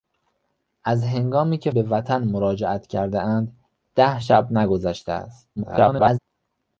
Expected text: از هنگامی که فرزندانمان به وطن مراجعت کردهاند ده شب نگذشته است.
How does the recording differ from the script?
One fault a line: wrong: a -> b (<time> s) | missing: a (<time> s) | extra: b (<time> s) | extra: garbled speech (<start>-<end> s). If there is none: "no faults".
missing: فرزندانمان (1.7 s)
extra: garbled speech (5.6-6.2 s)